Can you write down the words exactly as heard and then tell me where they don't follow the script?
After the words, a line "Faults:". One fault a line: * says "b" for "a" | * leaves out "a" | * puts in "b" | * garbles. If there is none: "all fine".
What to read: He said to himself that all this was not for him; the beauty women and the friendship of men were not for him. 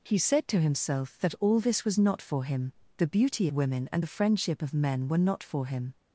He said to himself that all this was not for him; the beauty women and the friendship of men were not for him.
Faults:
all fine